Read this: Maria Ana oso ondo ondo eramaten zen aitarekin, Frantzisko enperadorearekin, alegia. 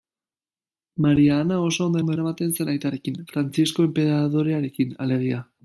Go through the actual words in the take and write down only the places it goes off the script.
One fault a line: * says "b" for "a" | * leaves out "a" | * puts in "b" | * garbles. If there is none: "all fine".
all fine